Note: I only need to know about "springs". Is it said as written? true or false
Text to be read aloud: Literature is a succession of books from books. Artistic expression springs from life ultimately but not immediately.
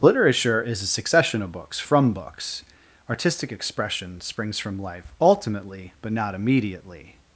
true